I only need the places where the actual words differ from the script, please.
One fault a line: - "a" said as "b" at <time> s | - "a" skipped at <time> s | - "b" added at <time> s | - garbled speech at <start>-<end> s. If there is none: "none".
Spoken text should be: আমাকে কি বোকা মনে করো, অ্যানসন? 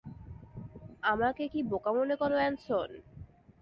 none